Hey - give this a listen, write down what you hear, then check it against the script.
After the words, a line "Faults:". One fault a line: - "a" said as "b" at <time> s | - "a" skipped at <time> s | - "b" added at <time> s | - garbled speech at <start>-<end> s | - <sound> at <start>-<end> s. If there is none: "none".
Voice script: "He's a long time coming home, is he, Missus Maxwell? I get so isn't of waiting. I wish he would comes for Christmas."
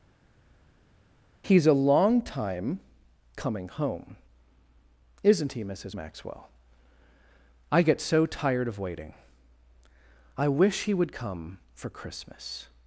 "He's a long time coming home, isn't he, Missus Maxwell? I get so tired of waiting. I wish he would come for Christmas."
Faults:
- "is" said as "isn't" at 5.2 s
- "isn't" said as "tired" at 8.3 s
- "comes" said as "come" at 11.1 s